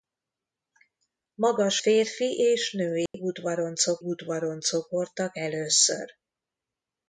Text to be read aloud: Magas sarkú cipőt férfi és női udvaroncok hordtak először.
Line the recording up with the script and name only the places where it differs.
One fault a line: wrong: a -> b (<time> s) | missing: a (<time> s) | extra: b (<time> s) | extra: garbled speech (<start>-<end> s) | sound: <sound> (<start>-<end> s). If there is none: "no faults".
missing: sarkú cipőt (1.8 s)
sound: dropout (3.1-3.1 s)
extra: udvaroncok (4.0 s)